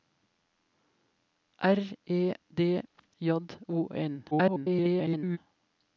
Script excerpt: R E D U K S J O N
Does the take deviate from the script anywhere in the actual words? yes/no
yes